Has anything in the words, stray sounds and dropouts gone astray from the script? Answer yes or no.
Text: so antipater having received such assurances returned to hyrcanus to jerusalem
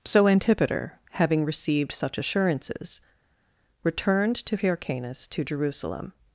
no